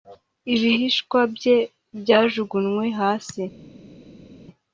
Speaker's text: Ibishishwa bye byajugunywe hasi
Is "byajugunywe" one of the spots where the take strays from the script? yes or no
no